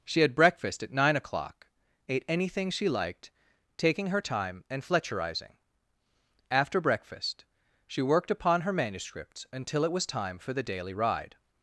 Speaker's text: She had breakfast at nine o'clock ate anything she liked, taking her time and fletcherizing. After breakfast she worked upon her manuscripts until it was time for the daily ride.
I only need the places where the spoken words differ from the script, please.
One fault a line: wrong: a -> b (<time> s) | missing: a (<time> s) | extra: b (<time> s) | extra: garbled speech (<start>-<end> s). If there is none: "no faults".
no faults